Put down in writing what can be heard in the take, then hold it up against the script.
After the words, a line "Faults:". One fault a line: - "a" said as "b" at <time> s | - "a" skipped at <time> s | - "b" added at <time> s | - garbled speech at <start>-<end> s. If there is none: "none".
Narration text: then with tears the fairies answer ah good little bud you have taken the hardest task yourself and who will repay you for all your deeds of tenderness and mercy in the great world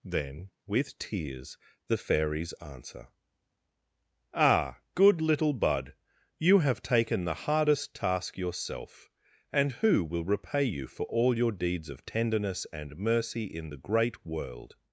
then with tears the fairies answer ah good little bud you have taken the hardest task yourself and who will repay you for all your deeds of tenderness and mercy in the great world
Faults:
none